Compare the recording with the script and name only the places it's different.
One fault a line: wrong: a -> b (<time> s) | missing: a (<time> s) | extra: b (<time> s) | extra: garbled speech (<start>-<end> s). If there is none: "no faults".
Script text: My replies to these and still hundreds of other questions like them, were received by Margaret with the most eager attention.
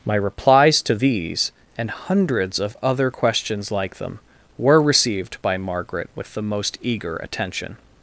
missing: still (1.9 s)